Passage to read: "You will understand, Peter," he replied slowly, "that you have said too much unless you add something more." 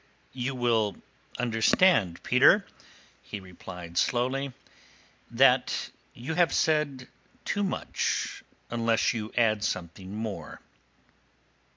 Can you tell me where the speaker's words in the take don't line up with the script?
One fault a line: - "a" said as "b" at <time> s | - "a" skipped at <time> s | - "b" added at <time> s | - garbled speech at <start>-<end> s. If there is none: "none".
none